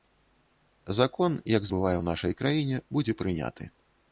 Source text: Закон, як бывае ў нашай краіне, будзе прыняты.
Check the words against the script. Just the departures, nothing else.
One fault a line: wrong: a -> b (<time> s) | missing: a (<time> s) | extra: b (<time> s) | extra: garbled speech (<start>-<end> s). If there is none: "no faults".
no faults